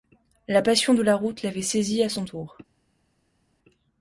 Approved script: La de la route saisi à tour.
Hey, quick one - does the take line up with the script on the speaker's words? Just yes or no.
no